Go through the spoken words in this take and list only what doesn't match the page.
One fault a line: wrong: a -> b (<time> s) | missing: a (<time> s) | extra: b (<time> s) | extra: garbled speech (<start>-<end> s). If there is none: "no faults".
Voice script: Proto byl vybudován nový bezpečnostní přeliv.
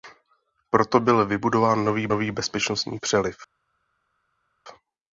extra: nový (2.1 s)